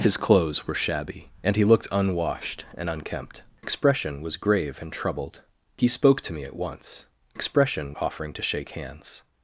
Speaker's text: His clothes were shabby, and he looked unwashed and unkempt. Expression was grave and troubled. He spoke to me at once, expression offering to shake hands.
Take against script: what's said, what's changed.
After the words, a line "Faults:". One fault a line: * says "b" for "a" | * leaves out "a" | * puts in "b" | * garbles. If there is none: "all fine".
His clothes were shabby, and he looked unwashed and unkempt. Expression was grave and troubled. He spoke to me at once, expression offering to shake hands.
Faults:
all fine